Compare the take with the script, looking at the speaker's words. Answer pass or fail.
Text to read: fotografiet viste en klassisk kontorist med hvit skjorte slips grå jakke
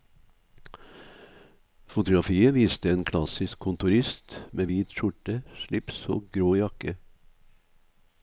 fail